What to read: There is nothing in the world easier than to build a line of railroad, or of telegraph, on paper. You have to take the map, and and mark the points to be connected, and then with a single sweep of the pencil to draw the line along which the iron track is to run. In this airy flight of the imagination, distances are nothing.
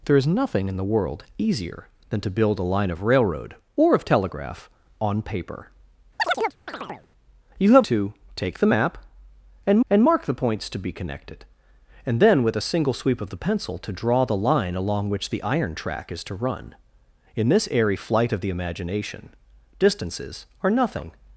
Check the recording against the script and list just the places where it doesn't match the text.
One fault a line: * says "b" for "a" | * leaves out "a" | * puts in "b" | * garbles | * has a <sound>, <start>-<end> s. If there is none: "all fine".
* has a chirp, 6.2-7.1 s